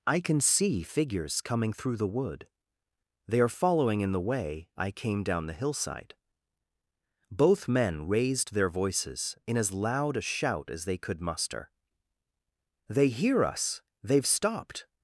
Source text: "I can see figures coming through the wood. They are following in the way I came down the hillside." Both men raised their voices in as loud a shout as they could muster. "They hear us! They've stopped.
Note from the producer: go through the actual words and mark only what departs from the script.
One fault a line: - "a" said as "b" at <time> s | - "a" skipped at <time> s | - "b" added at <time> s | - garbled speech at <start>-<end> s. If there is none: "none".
none